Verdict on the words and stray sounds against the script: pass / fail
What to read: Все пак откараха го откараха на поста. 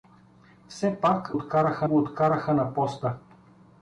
pass